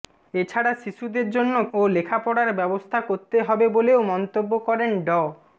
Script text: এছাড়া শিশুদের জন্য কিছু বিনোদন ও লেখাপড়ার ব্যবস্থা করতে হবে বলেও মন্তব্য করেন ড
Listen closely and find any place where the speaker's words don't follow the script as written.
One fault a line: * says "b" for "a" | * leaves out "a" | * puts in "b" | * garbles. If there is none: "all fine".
* leaves out "কিছু বিনোদন"